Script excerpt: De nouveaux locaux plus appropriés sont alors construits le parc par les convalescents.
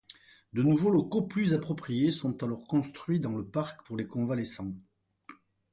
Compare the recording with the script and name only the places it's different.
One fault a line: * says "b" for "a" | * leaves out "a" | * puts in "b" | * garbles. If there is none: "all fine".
* puts in "dans"
* says "pour" for "par"